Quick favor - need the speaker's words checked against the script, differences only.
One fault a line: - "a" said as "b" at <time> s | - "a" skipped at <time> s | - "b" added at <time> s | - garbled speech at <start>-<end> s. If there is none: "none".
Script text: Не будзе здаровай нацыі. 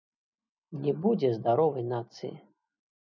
none